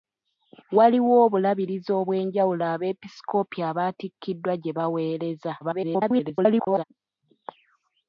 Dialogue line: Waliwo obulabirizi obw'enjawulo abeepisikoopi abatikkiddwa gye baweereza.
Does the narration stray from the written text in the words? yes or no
yes